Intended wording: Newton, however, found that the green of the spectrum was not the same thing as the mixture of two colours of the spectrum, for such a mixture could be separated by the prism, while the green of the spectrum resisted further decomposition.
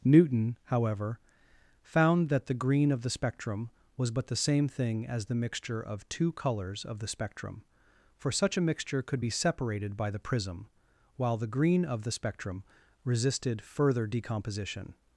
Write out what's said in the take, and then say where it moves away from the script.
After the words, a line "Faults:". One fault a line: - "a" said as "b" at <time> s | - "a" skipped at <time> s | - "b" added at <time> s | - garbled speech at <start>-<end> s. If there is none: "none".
Newton, however, found that the green of the spectrum was but the same thing as the mixture of two colours of the spectrum, for such a mixture could be separated by the prism, while the green of the spectrum resisted further decomposition.
Faults:
- "not" said as "but" at 4.1 s